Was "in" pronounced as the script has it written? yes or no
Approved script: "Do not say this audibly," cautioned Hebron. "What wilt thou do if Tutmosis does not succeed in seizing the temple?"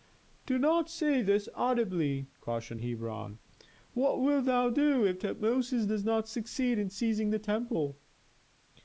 yes